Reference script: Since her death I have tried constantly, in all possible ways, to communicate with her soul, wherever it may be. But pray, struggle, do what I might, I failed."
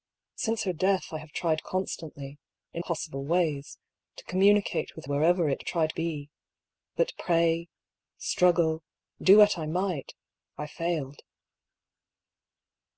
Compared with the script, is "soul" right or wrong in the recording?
wrong